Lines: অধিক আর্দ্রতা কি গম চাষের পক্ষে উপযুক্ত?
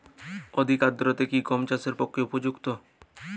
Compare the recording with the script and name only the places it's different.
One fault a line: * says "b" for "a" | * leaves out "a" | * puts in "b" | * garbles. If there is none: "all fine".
all fine